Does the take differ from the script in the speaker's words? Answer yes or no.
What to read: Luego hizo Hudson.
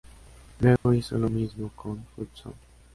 yes